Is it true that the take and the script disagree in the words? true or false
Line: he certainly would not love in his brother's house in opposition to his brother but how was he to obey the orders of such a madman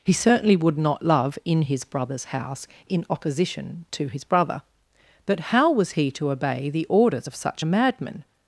false